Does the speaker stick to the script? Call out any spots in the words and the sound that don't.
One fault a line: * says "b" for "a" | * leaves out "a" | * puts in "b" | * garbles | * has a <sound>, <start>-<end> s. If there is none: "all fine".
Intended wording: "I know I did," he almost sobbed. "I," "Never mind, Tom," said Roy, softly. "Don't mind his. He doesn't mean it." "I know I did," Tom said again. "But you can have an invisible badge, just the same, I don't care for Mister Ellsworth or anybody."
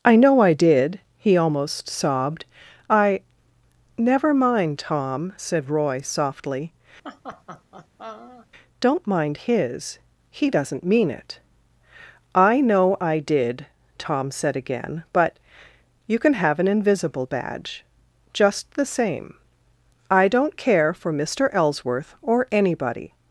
* has a laugh, 7.0-8.5 s